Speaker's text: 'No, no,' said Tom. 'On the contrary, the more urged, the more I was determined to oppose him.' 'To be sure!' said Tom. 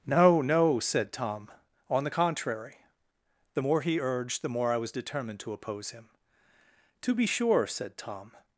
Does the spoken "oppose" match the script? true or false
true